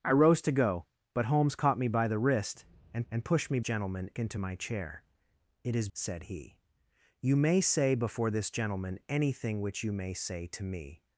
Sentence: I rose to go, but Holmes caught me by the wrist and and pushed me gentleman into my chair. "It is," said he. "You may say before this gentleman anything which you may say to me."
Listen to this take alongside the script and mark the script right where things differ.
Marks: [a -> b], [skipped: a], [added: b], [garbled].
I rose to go, but Holmes caught me by the wrist and and pushed me gentleman into my chair. "It is," said he. "You may say before this gentleman anything which you may say to me."